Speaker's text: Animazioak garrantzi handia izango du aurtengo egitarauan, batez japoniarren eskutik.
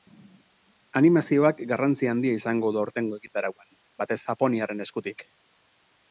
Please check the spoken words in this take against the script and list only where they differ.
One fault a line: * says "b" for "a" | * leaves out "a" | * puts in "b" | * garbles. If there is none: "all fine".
all fine